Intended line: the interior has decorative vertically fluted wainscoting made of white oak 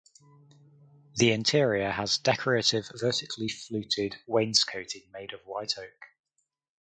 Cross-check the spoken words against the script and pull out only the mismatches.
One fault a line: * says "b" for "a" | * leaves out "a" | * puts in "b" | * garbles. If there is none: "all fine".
all fine